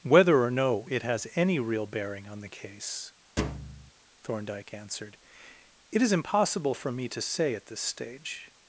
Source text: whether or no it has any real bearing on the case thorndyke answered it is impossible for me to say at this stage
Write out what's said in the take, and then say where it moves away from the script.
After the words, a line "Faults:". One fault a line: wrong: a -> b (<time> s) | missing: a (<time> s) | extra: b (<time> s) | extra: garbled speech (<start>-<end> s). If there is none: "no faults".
whether or no it has any real bearing on the case thorndyke answered it is impossible for me to say at this stage
Faults:
no faults